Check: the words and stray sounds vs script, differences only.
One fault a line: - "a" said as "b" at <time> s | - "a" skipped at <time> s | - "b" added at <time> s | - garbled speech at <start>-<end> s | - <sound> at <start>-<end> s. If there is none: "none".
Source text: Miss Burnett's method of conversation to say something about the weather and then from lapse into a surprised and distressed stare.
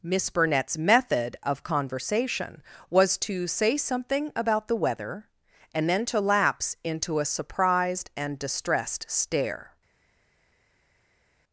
- "was" added at 2.9 s
- "from" said as "to" at 6.0 s